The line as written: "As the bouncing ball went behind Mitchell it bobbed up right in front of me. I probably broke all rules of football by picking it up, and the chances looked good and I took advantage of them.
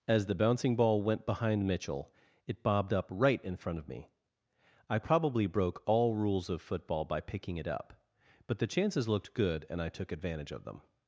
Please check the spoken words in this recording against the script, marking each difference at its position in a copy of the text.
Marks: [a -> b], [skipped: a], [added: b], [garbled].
"As the bouncing ball went behind Mitchell it bobbed up right in front of me. I probably broke all rules of football by picking it up, [and -> but] the chances looked good and I took advantage of them.